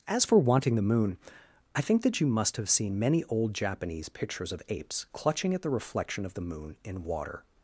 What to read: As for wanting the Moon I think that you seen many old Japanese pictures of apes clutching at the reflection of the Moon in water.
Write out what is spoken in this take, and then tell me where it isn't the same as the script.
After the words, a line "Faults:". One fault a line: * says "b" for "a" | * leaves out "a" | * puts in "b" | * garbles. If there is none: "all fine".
As for wanting the Moon I think that you must have seen many old Japanese pictures of apes clutching at the reflection of the Moon in water.
Faults:
* puts in "must have"